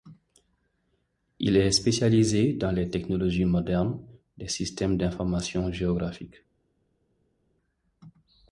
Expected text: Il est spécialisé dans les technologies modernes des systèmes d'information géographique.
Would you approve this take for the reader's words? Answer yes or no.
yes